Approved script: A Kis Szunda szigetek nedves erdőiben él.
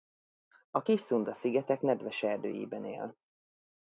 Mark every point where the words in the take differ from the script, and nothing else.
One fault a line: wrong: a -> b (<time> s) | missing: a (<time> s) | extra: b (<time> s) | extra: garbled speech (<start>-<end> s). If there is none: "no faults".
no faults